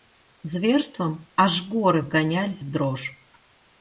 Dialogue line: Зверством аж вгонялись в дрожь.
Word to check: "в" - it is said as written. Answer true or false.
true